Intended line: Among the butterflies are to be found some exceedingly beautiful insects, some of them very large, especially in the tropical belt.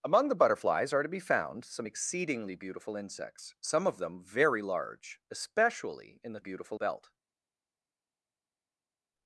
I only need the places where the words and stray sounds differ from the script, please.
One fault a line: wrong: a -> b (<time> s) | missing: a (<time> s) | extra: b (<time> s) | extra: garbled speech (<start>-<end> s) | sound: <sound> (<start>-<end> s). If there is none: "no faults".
wrong: tropical -> beautiful (6.4 s)